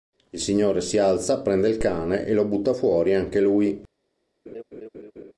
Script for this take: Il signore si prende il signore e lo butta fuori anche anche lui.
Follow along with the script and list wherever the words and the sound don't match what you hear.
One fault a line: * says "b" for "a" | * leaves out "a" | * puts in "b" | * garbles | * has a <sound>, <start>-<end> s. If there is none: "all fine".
* puts in "alza"
* says "cane" for "signore"
* leaves out "anche"
* has a laugh, 4.5-5.3 s